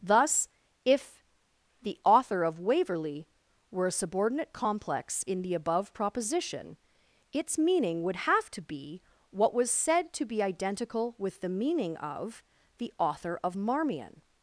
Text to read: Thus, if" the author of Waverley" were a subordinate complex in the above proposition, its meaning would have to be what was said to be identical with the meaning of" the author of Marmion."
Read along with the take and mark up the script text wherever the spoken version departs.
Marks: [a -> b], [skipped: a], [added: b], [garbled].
Thus, if" the author of Waverley" were a subordinate complex in the above proposition, its meaning would have to be what was said to be identical with the meaning of" the author of Marmion."